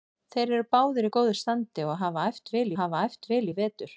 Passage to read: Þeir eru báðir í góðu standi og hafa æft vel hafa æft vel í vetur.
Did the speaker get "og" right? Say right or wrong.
right